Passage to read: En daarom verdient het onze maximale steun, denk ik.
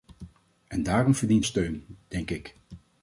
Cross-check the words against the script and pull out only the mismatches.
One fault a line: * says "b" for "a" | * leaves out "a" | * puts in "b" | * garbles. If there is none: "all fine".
* leaves out "het onze maximale"